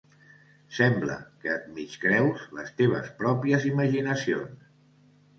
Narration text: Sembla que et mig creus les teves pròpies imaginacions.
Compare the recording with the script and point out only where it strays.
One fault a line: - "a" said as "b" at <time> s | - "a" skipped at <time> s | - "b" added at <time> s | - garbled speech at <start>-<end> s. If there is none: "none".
none